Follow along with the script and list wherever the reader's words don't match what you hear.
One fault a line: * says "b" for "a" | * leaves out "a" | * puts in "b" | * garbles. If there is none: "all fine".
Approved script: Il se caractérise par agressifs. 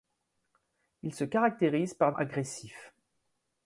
all fine